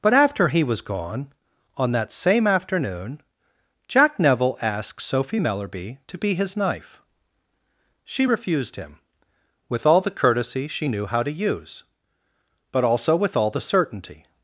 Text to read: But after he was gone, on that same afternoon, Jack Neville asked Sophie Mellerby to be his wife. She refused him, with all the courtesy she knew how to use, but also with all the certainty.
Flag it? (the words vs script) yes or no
yes